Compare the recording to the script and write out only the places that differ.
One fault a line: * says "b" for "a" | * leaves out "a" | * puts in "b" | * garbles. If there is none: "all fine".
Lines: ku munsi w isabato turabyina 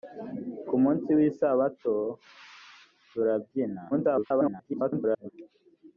* garbles